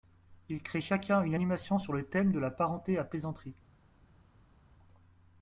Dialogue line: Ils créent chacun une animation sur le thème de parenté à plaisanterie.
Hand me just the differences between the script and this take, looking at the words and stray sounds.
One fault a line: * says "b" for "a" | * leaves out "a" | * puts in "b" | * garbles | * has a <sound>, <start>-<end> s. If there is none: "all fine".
* puts in "la"